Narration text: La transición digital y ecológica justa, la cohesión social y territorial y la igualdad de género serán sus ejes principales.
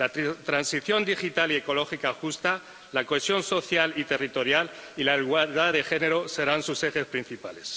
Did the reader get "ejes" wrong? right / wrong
right